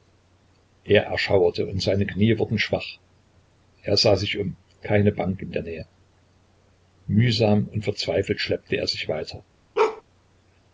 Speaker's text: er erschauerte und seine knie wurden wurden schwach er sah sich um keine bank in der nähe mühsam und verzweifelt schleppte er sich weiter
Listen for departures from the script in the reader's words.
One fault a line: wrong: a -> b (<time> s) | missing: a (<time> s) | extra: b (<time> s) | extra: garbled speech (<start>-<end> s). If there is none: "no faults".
missing: wurden (2.6 s)